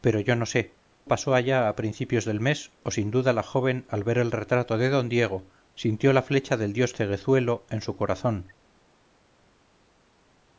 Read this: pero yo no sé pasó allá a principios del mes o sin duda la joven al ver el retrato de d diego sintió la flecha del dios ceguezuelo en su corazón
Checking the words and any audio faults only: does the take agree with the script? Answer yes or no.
yes